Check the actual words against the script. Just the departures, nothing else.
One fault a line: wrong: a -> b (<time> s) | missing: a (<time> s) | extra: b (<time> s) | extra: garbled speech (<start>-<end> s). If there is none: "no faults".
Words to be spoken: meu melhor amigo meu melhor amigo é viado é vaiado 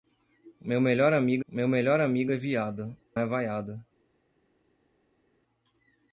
no faults